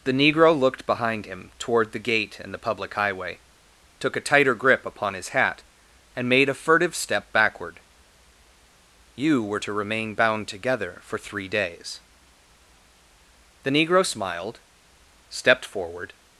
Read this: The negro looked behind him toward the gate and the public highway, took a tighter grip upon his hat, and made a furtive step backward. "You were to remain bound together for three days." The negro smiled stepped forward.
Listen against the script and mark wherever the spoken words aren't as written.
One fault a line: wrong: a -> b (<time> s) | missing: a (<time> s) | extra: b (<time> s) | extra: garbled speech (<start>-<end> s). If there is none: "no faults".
no faults